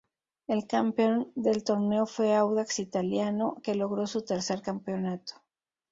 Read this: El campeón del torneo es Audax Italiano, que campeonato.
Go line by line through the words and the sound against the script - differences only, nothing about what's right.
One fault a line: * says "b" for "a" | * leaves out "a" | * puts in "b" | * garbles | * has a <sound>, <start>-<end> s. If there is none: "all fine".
* says "fue" for "es"
* puts in "logró su tercer"